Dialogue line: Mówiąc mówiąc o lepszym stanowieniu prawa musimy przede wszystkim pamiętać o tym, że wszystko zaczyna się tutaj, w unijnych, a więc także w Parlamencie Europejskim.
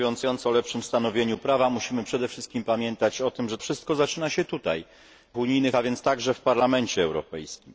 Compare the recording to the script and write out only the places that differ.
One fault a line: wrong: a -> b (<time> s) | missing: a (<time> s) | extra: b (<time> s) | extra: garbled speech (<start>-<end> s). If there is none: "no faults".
no faults